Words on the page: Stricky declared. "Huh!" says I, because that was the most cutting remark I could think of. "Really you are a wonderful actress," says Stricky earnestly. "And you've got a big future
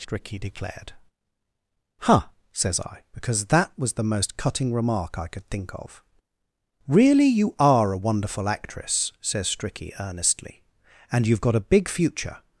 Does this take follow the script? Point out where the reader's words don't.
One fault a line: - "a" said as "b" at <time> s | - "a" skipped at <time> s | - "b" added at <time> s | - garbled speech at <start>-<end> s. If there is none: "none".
none